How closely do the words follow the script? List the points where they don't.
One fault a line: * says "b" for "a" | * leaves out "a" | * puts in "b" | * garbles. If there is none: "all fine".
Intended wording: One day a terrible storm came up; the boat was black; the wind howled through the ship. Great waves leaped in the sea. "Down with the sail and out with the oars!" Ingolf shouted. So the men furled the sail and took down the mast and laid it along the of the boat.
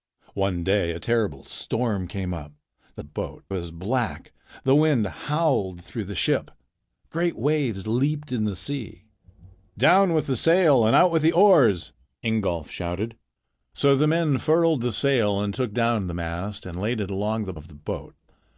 all fine